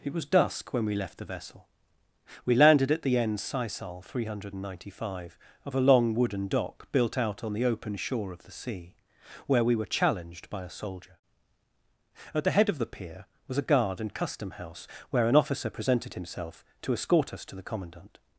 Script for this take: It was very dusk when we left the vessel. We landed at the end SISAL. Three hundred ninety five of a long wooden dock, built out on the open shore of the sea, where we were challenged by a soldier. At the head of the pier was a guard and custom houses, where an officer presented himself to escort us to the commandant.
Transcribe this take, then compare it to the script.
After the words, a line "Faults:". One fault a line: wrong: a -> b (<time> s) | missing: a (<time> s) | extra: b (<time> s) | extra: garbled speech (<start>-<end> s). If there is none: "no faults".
It was dusk when we left the vessel. We landed at the end SISAL. Three hundred ninety five of a long wooden dock, built out on the open shore of the sea, where we were challenged by a soldier. At the head of the pier was a guard and custom house, where an officer presented himself to escort us to the commandant.
Faults:
missing: very (0.2 s)
wrong: houses -> house (14.5 s)